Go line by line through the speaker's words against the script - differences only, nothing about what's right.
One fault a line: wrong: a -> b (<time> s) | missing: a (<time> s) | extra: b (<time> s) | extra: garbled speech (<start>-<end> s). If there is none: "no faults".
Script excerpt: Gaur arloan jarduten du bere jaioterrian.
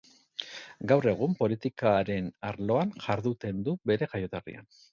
extra: egun politikaren (1.1 s)